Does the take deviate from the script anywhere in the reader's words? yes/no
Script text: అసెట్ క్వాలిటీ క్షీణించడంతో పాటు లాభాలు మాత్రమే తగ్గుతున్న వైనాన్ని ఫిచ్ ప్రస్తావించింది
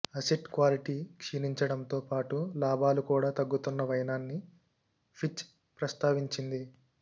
yes